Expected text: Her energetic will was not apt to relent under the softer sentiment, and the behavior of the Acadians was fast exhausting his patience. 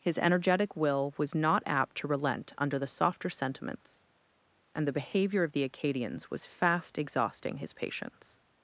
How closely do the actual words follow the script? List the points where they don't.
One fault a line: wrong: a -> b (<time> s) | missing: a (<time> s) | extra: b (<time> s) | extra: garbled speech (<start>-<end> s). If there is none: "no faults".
wrong: Her -> His (0.0 s)
wrong: sentiment -> sentiments (3.3 s)